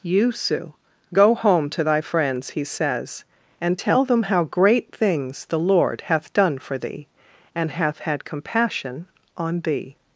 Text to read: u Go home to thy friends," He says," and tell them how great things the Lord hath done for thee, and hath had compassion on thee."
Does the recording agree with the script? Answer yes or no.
no